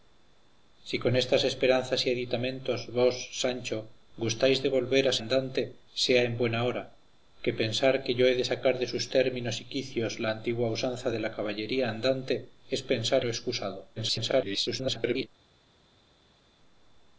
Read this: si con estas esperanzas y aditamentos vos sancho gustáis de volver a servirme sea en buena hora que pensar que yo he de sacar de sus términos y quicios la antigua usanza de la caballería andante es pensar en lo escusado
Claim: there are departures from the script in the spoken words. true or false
true